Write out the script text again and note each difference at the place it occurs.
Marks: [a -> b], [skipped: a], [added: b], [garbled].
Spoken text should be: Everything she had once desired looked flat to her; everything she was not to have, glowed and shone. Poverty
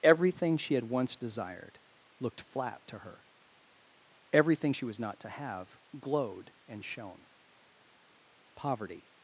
Everything she had once desired looked flat to her; everything she was not to have, glowed and shone. Poverty